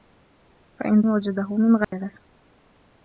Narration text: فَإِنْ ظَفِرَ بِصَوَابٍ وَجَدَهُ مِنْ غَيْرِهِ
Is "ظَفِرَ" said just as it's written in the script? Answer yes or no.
no